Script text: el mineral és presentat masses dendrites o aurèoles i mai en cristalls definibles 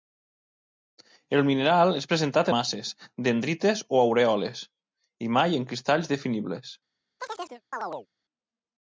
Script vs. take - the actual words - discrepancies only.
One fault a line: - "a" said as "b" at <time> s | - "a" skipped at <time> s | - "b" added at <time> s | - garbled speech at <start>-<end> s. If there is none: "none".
none